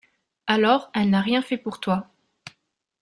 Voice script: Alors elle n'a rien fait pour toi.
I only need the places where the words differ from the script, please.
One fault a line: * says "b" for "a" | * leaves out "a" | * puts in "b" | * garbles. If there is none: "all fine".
all fine